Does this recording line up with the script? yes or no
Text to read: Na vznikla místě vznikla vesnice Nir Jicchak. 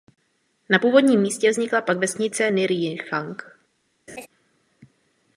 no